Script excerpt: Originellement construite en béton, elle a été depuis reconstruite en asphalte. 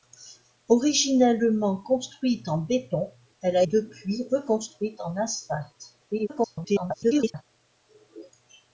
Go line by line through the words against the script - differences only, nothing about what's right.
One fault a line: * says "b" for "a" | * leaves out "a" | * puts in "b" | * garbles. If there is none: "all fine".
* leaves out "été"
* garbles